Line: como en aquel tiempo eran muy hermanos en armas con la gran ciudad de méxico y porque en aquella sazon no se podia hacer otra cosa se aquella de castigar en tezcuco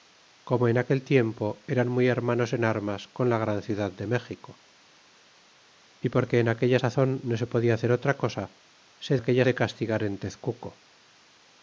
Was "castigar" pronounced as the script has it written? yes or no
yes